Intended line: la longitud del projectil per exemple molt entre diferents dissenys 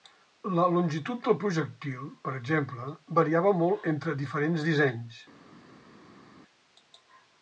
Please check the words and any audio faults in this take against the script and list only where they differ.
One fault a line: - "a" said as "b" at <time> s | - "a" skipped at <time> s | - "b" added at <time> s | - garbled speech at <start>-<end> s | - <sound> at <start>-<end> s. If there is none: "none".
- "variava" added at 3.2 s